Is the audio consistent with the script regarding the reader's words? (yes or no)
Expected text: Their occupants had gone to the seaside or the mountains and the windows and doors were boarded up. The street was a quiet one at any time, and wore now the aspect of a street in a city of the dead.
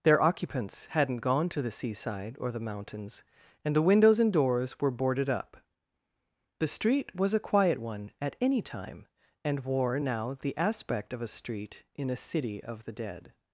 no